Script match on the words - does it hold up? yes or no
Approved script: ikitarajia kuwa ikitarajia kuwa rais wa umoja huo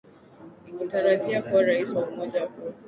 no